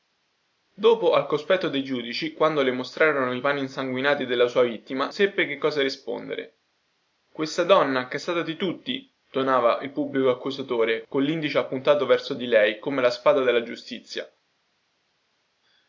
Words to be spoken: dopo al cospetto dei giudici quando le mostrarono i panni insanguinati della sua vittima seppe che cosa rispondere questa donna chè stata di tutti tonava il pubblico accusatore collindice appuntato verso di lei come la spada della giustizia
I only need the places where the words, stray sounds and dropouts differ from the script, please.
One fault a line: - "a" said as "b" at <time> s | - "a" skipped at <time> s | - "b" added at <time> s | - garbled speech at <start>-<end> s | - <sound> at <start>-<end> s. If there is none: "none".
none